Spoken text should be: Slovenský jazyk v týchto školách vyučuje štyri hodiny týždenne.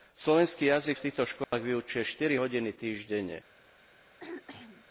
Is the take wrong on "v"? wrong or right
right